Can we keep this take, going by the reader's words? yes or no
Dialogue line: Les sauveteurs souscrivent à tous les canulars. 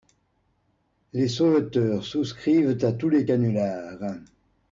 yes